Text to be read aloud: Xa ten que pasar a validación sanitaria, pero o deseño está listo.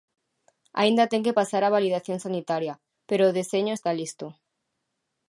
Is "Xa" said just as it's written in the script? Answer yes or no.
no